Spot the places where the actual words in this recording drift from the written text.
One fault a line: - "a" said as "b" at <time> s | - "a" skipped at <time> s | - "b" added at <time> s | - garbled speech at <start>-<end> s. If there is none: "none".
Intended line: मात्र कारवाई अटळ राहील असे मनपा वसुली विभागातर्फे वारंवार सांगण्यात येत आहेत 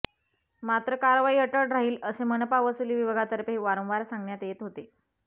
- "आहेत" said as "होते" at 4.6 s